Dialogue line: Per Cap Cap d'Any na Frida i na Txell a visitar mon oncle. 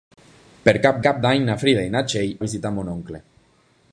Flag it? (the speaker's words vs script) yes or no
no